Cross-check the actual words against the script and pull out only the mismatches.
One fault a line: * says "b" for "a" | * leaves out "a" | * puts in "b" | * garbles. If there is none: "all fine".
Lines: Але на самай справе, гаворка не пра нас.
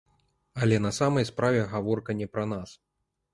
all fine